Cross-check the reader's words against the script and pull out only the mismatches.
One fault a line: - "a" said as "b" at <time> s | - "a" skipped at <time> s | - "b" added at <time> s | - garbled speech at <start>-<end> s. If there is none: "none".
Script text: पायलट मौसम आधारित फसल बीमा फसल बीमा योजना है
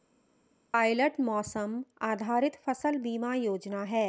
- "फसल बीमा" skipped at 3.3 s